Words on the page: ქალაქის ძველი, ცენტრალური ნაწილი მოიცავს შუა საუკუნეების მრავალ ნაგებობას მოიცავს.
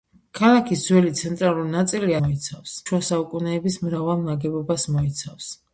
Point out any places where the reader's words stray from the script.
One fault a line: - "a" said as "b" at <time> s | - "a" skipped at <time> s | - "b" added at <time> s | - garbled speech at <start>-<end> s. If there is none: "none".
none